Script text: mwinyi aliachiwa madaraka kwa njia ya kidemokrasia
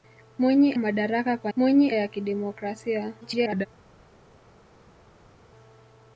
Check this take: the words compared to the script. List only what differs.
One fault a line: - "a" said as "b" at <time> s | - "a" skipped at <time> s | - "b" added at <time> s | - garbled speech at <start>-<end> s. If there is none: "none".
- "aliachiwa" skipped at 0.7 s
- "njia" said as "mwinyi" at 1.6 s
- garbled speech at 3.2-3.7 s